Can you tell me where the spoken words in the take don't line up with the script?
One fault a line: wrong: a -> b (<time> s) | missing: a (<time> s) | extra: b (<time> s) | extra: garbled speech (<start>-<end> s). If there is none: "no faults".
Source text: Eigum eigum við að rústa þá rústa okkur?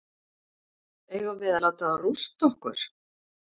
missing: eigum (1.4 s)
wrong: rústa -> láta (1.7 s)